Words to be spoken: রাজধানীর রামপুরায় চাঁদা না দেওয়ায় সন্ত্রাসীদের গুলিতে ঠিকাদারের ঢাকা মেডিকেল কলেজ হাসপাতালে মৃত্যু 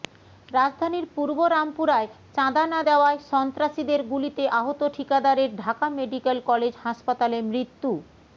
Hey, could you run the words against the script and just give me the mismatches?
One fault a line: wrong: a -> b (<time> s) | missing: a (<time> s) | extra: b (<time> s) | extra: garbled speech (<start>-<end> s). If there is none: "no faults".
extra: পূর্ব (1.1 s)
extra: আহত (4.5 s)